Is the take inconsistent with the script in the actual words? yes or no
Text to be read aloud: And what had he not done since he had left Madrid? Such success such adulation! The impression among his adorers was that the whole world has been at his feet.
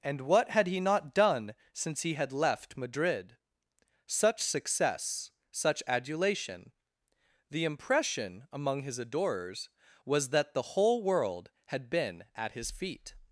yes